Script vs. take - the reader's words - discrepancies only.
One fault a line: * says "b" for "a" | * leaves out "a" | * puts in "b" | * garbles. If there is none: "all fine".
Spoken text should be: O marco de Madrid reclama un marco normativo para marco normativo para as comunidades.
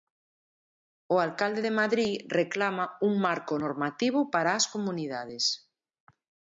* says "alcalde" for "marco"
* leaves out "marco normativo para"